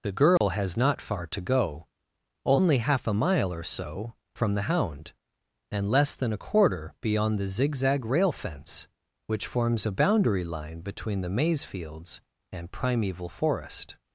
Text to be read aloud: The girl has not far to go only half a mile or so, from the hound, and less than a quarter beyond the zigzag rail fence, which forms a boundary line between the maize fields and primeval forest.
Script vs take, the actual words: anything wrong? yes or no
no